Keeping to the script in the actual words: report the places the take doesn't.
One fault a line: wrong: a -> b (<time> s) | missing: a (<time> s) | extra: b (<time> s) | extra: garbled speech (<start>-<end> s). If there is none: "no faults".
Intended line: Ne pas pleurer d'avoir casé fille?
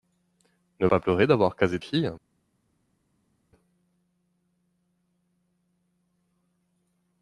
no faults